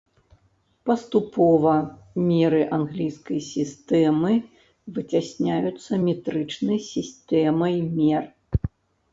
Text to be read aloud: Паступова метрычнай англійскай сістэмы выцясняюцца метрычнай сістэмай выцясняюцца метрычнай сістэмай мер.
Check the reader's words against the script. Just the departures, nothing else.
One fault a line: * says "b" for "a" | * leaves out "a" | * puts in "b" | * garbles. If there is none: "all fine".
* says "меры" for "метрычнай"
* leaves out "выцясняюцца метрычнай сістэмай"